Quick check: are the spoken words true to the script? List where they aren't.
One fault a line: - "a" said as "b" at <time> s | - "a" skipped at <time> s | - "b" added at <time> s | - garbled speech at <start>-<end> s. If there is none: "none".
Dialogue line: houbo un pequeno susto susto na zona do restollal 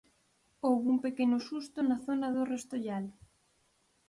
- "susto" skipped at 1.8 s